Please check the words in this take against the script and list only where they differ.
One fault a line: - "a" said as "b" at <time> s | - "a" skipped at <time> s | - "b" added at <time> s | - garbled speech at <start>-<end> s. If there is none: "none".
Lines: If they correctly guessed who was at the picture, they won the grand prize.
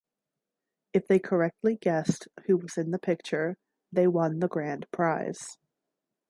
- "at" said as "in" at 2.8 s